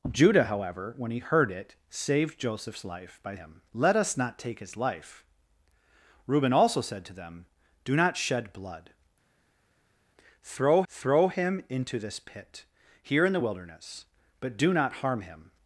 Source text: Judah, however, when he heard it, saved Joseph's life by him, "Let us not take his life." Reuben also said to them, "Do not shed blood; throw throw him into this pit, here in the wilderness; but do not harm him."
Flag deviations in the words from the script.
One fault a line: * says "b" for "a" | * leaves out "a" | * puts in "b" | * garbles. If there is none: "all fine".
all fine